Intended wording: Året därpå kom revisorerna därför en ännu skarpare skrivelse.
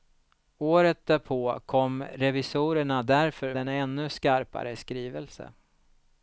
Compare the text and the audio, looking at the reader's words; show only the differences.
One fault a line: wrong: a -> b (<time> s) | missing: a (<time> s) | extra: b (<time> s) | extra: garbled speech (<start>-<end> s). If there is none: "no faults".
no faults